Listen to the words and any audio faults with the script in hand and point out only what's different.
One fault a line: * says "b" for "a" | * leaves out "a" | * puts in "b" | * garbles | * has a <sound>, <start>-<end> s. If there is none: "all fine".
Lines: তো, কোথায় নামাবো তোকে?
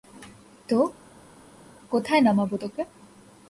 all fine